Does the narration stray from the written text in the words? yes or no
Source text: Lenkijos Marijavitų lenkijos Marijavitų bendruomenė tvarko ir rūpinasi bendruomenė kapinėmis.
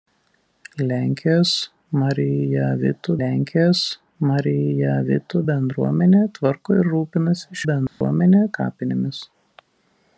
no